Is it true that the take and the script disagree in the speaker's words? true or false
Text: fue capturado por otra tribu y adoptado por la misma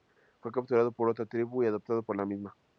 false